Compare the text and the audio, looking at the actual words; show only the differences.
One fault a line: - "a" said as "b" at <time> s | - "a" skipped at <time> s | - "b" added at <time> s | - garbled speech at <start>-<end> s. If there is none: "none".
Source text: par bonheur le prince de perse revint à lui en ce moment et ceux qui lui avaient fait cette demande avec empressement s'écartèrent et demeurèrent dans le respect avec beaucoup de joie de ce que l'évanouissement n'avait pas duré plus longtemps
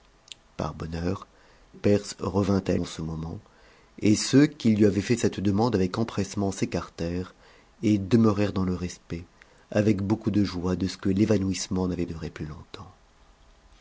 - "le prince de" skipped at 1.3 s
- "lui" skipped at 2.7 s
- "pas" skipped at 12.1 s